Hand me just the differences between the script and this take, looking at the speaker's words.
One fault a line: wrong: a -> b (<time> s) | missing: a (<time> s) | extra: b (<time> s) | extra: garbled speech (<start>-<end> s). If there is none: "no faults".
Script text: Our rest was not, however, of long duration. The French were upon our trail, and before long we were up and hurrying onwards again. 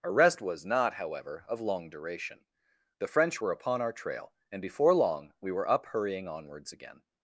missing: and (5.9 s)